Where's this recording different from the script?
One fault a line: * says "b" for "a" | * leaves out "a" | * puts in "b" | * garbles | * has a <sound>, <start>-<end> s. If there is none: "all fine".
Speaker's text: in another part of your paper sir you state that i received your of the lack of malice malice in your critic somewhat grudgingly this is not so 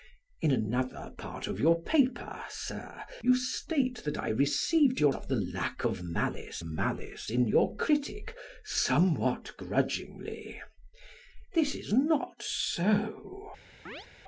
* has a chirp, 13.9-14.1 s